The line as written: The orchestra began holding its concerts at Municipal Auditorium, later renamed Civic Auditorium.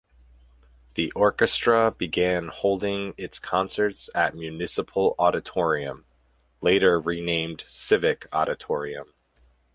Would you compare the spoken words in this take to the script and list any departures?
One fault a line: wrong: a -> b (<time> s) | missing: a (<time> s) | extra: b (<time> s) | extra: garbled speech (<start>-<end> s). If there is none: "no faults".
no faults